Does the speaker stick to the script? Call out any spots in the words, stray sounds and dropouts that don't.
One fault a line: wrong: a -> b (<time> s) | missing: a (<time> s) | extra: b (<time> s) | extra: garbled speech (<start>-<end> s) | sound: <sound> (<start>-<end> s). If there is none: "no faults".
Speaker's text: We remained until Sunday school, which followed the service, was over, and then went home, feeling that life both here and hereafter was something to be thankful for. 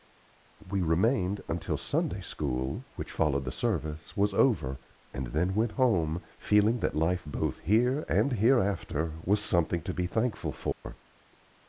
sound: dropout (10.7-10.8 s)